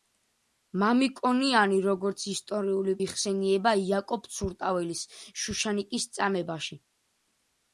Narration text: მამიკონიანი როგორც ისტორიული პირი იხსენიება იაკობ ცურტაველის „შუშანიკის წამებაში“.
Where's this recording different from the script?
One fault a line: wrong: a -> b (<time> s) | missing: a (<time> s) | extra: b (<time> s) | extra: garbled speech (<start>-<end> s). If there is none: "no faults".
missing: პირი (3.0 s)